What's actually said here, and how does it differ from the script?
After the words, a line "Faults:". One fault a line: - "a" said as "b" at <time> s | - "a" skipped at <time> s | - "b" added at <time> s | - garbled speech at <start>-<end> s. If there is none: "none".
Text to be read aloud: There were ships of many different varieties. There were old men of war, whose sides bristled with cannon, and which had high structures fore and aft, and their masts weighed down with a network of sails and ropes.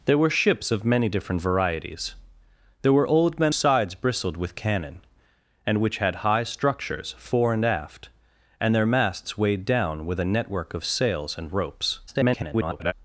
There were ships of many different varieties. There were old men sides bristled with cannon, and which had high structures fore and aft, and their masts weighed down with a network of sails and ropes. [garbled]
Faults:
- "of war whose" skipped at 3.5 s
- garbled speech at 12.1-12.9 s